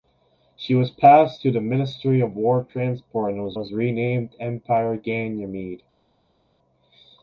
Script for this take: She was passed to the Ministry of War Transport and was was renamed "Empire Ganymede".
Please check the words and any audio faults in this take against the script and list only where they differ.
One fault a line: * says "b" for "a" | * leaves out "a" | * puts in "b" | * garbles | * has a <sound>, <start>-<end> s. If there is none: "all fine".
all fine